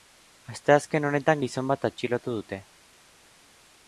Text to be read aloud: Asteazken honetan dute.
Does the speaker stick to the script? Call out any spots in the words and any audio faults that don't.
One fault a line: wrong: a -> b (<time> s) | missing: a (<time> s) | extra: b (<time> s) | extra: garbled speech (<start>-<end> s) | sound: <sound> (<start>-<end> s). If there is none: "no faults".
extra: gizon bat atxilotu (1.4 s)